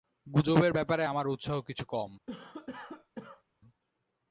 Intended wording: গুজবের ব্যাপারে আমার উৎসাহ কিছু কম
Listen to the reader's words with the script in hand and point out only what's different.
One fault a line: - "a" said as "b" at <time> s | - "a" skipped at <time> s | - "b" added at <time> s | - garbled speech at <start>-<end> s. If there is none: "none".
none